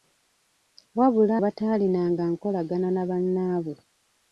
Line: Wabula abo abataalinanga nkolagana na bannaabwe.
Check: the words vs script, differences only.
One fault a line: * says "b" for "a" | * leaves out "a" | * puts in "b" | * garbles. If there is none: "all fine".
* leaves out "abo"